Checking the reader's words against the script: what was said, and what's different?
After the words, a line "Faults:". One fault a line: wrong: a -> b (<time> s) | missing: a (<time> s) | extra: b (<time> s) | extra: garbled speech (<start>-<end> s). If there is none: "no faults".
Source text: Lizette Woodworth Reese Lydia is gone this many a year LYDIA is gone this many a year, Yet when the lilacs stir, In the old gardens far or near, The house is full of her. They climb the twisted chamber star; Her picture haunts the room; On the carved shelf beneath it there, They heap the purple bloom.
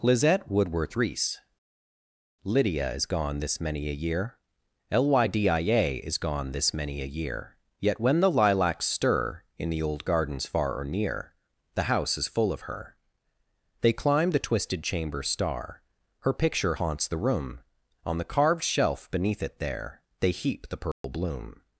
Lizette Woodworth Reese Lydia is gone this many a year LYDIA is gone this many a year, Yet when the lilacs stir, In the old gardens far or near, The house is full of her. They climb the twisted chamber star; Her picture haunts the room; On the carved shelf beneath it there, They heap the purple bloom.
Faults:
no faults